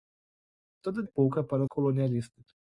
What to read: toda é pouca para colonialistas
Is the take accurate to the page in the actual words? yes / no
yes